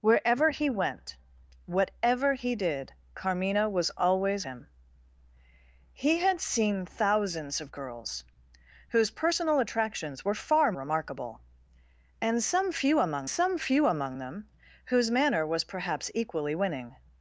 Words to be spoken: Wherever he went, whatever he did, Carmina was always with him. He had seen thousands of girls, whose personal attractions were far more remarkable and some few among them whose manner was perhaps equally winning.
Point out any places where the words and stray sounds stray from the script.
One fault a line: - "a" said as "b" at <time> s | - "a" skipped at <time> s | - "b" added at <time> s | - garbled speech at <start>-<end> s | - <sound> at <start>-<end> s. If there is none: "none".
- "with" skipped at 4.5 s
- "more" skipped at 10.7 s
- "some few among" added at 13.3 s